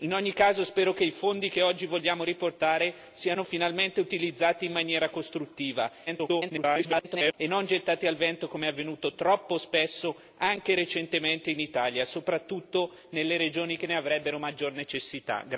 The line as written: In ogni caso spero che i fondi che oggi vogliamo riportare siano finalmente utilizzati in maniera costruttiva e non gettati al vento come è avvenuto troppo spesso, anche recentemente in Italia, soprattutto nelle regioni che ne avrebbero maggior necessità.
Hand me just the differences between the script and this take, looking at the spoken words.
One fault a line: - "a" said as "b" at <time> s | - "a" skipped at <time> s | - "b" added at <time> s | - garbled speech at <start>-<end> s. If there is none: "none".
- garbled speech at 6.1-7.3 s